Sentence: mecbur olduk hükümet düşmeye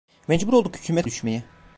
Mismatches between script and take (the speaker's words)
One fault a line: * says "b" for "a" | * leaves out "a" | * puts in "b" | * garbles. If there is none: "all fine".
all fine